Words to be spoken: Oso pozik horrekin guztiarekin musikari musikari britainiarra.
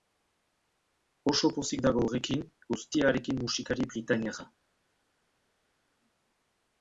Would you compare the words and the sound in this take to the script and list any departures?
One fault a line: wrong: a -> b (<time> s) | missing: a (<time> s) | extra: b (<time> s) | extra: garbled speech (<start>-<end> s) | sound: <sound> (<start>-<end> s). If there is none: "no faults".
extra: dago (1.9 s)
missing: musikari (3.9 s)